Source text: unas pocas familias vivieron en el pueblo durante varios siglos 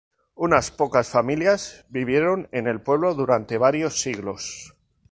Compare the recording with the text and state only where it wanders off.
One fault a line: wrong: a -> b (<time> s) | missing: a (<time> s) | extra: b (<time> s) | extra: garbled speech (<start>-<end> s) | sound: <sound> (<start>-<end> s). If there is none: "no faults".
no faults